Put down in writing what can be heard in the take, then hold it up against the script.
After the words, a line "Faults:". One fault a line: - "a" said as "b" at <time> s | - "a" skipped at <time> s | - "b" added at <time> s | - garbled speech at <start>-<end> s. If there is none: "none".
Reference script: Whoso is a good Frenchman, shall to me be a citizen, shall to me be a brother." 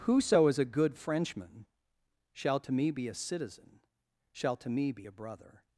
Whoso is a good Frenchman, shall to me be a citizen, shall to me be a brother."
Faults:
none